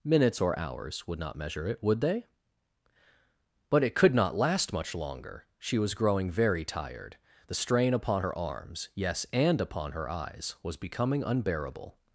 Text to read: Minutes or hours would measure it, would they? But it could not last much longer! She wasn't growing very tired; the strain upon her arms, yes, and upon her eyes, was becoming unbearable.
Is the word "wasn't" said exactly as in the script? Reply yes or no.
no